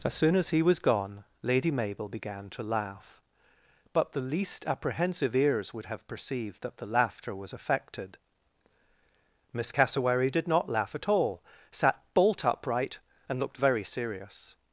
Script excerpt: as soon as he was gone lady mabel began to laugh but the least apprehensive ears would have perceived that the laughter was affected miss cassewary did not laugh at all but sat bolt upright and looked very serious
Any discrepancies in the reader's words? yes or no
yes